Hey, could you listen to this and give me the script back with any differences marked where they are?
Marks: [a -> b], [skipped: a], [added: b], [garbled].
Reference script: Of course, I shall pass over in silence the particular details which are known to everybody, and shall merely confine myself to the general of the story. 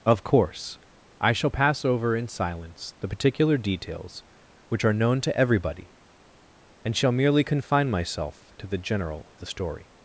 Of course, I shall pass over in silence the particular details which are known to everybody, and shall merely confine myself to the general of the story.